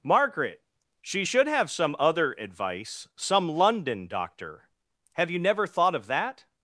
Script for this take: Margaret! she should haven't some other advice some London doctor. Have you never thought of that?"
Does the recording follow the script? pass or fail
fail